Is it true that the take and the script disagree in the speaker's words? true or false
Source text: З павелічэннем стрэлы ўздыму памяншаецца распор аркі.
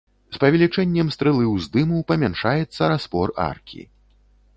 false